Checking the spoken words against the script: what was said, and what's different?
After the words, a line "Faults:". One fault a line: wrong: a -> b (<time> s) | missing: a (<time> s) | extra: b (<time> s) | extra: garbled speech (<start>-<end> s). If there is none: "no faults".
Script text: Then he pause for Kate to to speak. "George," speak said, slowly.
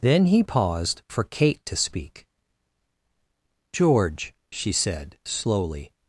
Then he paused for Kate to speak. "George," she said, slowly.
Faults:
wrong: pause -> paused (0.4 s)
missing: to (1.8 s)
wrong: speak -> she (4.5 s)